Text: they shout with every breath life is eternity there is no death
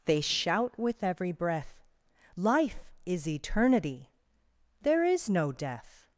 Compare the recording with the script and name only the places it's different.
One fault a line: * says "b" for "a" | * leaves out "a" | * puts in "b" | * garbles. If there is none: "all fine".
all fine